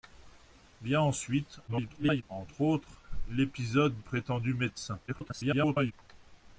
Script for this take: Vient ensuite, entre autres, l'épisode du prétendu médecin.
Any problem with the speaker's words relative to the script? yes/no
yes